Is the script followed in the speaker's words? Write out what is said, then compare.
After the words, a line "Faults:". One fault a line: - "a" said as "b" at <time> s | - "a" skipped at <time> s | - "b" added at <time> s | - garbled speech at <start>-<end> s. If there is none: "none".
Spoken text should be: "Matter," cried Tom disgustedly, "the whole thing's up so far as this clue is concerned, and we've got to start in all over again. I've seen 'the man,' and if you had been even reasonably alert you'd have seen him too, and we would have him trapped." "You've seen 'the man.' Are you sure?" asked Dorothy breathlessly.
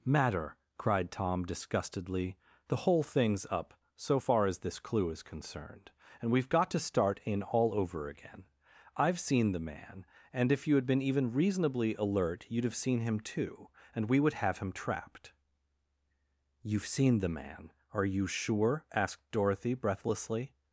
"Matter," cried Tom disgustedly, "the whole thing's up so far as this clue is concerned, and we've got to start in all over again. I've seen 'the man,' and if you had been even reasonably alert you'd have seen him too, and we would have him trapped." "You've seen 'the man.' Are you sure?" asked Dorothy breathlessly.
Faults:
none